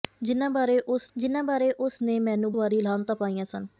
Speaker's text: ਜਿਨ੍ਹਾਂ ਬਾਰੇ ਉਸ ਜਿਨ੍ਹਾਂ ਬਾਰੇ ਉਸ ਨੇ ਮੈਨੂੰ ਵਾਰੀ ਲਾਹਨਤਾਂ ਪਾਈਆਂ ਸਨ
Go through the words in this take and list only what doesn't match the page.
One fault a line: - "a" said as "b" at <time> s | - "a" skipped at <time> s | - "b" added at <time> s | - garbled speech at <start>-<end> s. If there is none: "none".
none